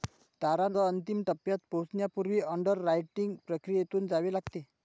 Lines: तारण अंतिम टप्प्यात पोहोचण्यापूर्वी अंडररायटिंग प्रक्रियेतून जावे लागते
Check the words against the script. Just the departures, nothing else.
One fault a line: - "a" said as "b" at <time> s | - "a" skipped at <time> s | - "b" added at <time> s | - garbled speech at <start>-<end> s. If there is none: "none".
none